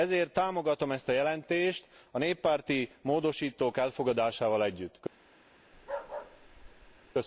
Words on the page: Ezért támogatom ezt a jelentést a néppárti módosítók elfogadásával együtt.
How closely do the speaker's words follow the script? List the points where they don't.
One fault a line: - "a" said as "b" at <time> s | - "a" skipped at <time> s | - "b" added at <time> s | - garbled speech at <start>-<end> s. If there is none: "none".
none